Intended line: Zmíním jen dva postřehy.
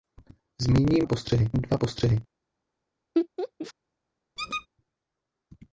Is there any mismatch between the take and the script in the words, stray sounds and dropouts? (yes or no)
yes